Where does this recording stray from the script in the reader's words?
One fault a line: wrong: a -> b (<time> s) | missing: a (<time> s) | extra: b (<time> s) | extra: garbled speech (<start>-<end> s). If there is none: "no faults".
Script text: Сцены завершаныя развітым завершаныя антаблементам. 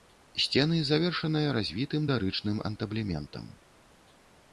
wrong: завершаныя -> дарычным (2.1 s)